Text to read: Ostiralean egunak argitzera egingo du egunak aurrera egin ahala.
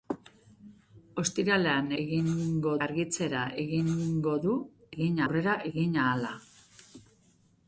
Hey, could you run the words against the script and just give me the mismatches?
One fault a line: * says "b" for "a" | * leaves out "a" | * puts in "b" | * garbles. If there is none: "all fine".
* says "egingo" for "egunak"
* says "egin" for "egunak"